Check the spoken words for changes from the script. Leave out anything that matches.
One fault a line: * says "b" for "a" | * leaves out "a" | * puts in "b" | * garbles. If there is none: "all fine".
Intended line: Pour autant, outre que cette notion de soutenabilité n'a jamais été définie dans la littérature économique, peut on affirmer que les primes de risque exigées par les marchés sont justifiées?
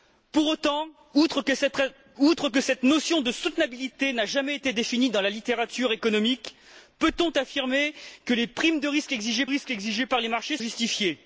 * puts in "risque exigées"
* leaves out "sont"